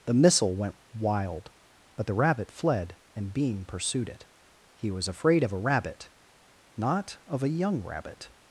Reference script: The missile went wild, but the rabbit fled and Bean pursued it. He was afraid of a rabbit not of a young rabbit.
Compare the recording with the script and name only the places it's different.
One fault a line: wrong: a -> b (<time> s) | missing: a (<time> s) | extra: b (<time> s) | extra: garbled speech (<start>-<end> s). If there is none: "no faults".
no faults